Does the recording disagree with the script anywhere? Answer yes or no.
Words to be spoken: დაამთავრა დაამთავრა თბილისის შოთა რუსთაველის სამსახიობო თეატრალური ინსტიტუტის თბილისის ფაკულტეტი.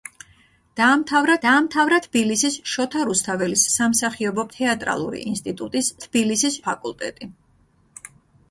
no